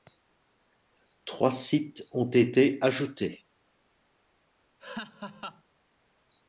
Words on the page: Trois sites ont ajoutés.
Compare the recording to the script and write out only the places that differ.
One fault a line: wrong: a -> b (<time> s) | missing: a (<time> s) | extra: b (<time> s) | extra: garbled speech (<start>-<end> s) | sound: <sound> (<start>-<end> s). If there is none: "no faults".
extra: été (2.3 s)
sound: laugh (4.8-5.6 s)